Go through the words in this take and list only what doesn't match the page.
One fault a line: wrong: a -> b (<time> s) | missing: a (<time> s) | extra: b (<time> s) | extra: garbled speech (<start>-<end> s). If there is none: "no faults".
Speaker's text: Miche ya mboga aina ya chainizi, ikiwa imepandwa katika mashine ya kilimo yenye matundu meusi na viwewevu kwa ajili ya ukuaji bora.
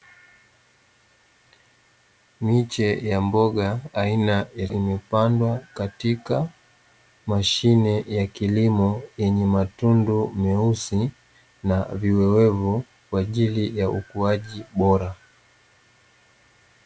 missing: chainizi ikiwa (4.7 s)